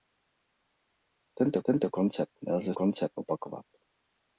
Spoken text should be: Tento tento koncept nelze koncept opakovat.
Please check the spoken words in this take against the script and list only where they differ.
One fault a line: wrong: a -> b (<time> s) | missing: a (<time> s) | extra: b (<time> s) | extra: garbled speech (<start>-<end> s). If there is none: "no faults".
no faults